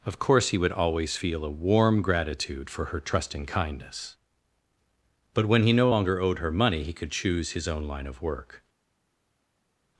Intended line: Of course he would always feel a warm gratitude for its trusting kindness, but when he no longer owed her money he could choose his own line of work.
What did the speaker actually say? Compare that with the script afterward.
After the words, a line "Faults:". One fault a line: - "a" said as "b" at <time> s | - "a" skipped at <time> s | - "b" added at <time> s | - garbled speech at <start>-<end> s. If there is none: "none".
Of course he would always feel a warm gratitude for her trusting kindness, but when he no longer owed her money he could choose his own line of work.
Faults:
- "its" said as "her" at 2.8 s